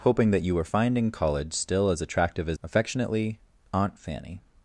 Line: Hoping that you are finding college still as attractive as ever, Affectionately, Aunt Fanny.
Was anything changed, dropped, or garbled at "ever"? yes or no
yes